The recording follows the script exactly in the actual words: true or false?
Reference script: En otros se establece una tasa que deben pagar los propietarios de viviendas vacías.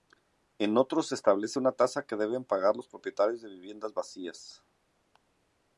true